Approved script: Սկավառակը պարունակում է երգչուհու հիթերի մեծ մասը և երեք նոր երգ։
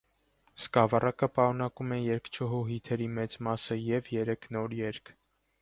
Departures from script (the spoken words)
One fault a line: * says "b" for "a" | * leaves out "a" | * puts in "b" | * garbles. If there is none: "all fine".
all fine